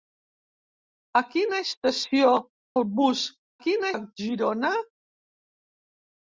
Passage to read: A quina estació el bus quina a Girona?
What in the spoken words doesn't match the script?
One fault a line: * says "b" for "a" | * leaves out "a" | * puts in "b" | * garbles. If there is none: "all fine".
all fine